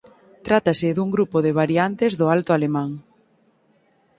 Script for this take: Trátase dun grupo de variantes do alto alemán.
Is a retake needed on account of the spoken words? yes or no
no